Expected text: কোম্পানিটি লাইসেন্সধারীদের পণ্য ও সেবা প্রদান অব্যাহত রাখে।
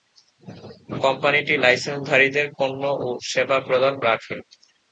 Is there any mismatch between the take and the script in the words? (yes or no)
yes